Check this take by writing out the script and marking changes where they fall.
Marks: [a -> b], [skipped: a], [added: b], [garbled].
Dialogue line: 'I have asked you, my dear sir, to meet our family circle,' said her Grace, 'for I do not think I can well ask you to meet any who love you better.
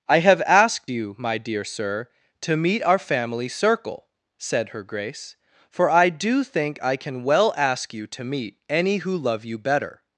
'I have asked you, my dear sir, to meet our family circle,' said her Grace, 'for I do [skipped: not] think I can well ask you to meet any who love you better.